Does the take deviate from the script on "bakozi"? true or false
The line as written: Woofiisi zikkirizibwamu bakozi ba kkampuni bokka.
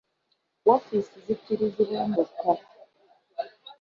true